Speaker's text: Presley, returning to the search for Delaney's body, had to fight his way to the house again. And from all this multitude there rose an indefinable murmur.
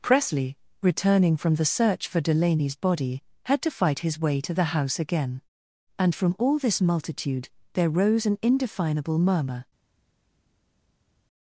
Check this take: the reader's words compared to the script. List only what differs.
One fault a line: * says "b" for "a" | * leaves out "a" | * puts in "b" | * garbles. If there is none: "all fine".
* says "from" for "to"